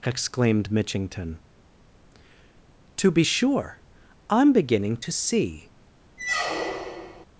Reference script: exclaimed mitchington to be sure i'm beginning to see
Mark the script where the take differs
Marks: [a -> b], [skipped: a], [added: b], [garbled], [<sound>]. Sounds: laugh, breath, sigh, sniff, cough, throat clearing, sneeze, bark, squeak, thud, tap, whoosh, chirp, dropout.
exclaimed mitchington to be sure i'm beginning to see [squeak]